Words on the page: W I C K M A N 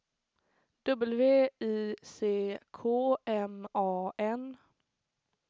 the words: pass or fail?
pass